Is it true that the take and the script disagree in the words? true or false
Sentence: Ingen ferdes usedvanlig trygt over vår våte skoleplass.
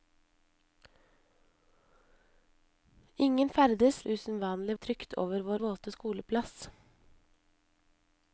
false